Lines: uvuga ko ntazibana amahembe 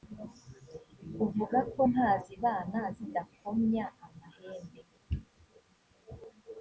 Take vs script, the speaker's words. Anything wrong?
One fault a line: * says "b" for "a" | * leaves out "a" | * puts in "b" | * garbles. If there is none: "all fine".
* puts in "zidakomya"